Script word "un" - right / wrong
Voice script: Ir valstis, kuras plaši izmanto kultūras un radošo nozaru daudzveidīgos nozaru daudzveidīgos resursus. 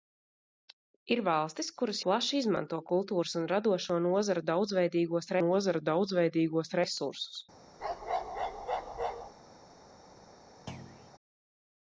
right